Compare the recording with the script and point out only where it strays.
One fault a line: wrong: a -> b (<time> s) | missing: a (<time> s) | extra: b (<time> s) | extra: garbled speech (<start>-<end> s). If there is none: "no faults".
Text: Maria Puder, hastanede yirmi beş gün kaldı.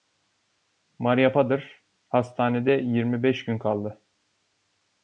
no faults